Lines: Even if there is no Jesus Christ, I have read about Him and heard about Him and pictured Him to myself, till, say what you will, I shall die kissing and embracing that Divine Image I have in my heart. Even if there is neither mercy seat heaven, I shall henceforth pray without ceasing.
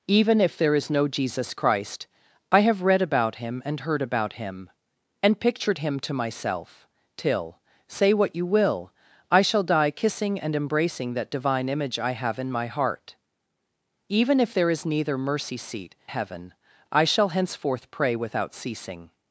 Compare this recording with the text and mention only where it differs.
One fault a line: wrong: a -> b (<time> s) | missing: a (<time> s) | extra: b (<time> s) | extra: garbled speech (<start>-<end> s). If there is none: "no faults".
no faults